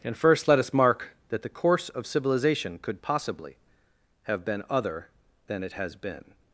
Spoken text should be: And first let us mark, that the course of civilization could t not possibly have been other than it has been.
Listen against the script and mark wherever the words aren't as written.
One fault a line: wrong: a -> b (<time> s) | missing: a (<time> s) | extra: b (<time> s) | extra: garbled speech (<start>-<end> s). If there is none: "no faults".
missing: t not (3.0 s)